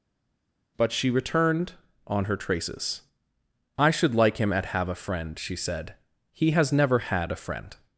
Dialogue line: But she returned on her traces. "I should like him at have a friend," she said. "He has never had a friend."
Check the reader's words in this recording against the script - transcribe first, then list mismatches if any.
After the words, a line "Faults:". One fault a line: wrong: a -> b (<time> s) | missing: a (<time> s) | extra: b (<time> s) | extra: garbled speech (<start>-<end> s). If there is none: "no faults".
But she returned on her traces. "I should like him at have a friend," she said. "He has never had a friend."
Faults:
no faults